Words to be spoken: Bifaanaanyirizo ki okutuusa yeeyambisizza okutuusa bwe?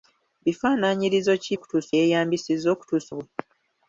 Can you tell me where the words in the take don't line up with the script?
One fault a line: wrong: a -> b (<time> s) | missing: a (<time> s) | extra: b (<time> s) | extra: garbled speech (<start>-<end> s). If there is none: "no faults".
no faults